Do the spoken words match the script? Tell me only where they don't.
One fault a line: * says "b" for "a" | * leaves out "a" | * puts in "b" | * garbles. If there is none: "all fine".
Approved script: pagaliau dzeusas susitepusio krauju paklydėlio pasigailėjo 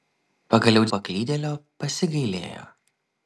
* leaves out "dzeusas susitepusio krauju"